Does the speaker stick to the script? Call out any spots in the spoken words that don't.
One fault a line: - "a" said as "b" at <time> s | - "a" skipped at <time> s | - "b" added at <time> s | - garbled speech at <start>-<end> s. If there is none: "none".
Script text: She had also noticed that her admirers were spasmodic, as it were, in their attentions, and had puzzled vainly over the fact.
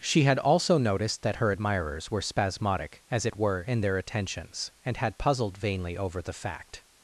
none